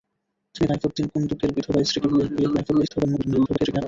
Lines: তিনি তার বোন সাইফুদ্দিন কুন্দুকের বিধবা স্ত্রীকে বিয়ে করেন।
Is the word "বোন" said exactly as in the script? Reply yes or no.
no